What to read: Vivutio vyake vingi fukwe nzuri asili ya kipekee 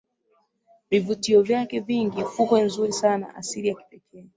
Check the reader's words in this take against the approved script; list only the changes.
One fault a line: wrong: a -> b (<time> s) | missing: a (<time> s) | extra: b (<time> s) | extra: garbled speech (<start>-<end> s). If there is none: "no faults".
extra: sana (2.9 s)